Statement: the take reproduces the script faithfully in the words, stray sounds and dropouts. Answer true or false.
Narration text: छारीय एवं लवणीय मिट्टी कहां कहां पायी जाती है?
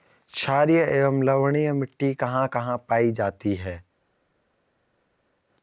true